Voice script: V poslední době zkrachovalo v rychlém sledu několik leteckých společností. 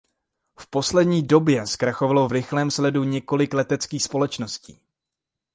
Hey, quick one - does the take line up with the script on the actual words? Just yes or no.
yes